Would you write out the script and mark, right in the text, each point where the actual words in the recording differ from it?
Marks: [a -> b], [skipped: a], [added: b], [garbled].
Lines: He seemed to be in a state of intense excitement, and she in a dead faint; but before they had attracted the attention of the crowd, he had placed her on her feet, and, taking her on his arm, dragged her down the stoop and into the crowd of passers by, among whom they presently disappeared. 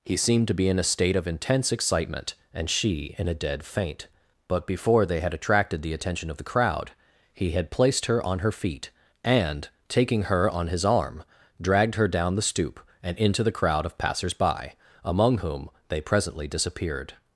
He seemed to be in a state of intense excitement, and she in a dead faint; but before they had attracted the attention of the crowd, he had placed her on her feet, and, taking her on his arm, dragged her down the stoop and into the crowd of passers by, among whom they presently disappeared.